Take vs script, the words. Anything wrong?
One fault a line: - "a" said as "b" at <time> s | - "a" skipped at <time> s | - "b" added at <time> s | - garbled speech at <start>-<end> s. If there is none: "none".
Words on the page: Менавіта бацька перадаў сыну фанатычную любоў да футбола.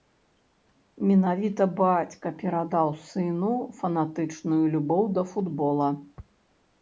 none